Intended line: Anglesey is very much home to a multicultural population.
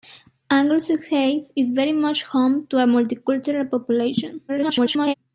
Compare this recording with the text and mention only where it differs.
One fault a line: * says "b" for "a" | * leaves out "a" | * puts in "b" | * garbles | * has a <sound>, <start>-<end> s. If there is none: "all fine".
* garbles